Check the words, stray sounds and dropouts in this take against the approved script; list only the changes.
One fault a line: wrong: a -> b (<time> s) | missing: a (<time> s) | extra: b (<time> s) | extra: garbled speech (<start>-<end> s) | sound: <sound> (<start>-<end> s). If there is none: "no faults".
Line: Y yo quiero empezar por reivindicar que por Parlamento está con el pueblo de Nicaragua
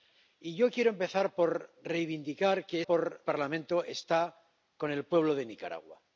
no faults